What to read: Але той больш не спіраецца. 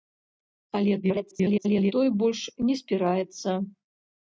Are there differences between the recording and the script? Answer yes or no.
yes